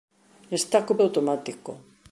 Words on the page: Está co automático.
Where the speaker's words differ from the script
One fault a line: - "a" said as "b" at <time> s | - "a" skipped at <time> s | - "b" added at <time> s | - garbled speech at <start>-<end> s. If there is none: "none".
none